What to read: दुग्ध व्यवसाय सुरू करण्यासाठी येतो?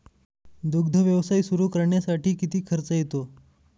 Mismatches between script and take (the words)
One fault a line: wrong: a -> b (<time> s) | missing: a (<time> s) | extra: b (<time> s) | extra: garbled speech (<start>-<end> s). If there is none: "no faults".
extra: किती खर्च (2.3 s)